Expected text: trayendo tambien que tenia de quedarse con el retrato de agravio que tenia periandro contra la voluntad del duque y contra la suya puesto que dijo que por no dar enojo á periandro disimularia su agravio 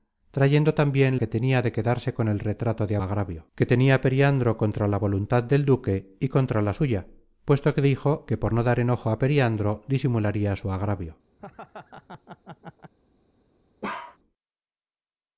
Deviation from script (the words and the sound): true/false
true